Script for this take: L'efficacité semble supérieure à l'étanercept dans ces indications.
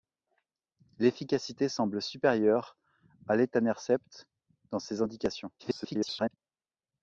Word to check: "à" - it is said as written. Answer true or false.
true